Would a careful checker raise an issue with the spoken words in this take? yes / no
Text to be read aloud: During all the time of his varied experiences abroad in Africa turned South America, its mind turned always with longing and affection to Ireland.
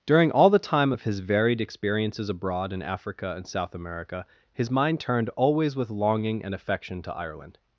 yes